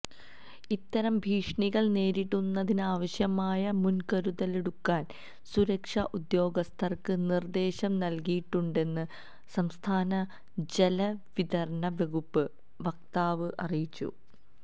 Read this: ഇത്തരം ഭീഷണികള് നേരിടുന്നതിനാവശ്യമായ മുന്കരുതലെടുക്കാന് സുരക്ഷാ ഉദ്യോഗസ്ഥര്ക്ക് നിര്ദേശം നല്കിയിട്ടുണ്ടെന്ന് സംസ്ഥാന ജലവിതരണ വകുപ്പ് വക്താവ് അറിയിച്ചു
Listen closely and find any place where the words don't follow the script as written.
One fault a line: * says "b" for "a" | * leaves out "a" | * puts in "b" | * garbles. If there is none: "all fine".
all fine